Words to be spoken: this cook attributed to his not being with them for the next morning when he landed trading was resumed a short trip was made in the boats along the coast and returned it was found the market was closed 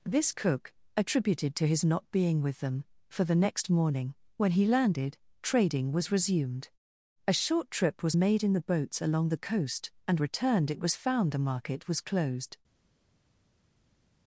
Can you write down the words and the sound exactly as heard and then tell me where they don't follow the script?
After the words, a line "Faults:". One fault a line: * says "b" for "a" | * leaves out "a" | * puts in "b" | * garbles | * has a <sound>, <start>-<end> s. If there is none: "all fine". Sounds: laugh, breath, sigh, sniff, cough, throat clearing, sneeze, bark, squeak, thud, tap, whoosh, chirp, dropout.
this cook attributed to his not being with them for the next morning when he landed trading was resumed a short trip was made in the boats along the coast and returned it was found the market was closed
Faults:
all fine